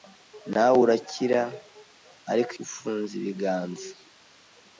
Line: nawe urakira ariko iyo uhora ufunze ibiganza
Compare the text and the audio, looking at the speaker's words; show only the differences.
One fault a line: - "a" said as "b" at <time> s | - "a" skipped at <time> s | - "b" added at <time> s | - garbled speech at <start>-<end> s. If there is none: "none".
- "iyo uhora" skipped at 2.5 s